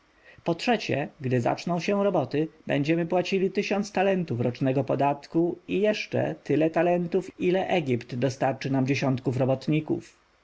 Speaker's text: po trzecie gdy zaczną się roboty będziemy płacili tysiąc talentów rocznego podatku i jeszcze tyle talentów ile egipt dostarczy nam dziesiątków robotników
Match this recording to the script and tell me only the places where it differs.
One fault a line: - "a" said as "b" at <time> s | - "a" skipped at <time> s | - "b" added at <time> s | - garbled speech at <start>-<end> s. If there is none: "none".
none